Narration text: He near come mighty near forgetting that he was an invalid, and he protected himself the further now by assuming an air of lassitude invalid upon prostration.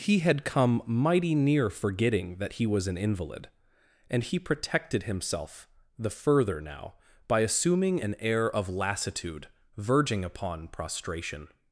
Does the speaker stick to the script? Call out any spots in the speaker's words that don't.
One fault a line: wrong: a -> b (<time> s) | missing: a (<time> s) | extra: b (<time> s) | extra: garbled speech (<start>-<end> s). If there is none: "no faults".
wrong: near -> had (0.2 s)
wrong: invalid -> verging (9.8 s)